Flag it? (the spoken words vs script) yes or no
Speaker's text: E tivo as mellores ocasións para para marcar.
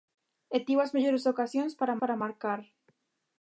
no